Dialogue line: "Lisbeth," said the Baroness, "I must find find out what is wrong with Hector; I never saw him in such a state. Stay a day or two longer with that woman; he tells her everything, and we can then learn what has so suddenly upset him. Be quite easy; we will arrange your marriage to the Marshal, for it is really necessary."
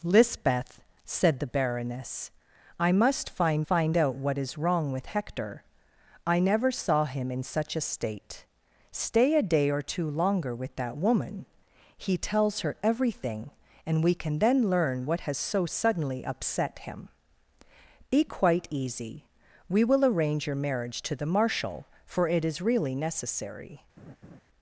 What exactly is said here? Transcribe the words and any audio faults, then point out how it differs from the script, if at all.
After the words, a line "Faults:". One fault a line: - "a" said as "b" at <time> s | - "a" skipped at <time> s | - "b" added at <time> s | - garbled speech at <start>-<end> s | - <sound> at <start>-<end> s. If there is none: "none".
"Lisbeth," said the Baroness, "I must find find out what is wrong with Hector; I never saw him in such a state. Stay a day or two longer with that woman; he tells her everything, and we can then learn what has so suddenly upset him. Be quite easy; we will arrange your marriage to the Marshal, for it is really necessary."
Faults:
- laugh at 24.0-24.4 s